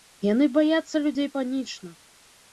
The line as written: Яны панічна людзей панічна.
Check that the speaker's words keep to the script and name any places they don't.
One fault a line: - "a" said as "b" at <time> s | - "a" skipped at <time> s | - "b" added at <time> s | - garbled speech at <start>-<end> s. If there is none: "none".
- "панічна" said as "баяцца" at 0.6 s